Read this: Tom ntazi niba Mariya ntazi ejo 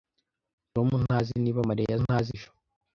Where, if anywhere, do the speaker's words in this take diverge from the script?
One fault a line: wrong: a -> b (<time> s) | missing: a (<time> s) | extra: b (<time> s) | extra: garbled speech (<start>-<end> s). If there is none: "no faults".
no faults